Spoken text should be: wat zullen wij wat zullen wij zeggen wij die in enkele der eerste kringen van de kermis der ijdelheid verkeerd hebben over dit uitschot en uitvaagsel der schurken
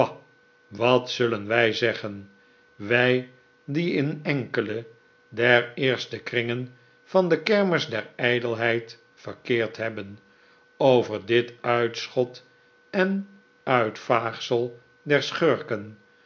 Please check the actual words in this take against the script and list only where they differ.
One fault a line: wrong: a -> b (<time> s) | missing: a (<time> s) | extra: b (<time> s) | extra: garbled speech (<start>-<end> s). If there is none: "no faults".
missing: wat zullen wij (1.7 s)